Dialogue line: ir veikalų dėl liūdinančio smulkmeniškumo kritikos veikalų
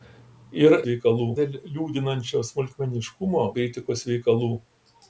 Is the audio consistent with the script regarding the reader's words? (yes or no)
yes